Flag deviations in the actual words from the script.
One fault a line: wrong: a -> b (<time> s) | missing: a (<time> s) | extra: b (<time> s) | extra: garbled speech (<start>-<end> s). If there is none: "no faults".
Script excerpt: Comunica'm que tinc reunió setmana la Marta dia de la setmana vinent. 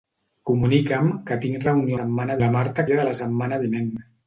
no faults